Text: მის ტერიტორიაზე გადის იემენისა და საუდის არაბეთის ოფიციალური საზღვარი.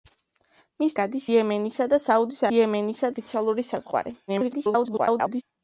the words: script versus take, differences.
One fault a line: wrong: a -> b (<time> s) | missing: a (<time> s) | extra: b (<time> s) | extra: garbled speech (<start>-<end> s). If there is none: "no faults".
missing: ტერიტორიაზე (0.9 s)
wrong: არაბეთის -> იემენისა (2.6 s)
extra: garbled speech (4.3-5.4 s)